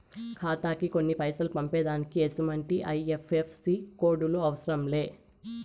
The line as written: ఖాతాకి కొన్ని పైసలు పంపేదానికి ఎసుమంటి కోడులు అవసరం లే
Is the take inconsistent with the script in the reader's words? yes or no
yes